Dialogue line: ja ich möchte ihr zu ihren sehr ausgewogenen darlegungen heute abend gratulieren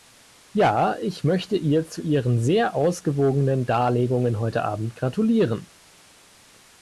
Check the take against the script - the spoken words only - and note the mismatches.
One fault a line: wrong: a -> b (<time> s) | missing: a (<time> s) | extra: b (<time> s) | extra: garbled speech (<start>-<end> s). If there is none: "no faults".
no faults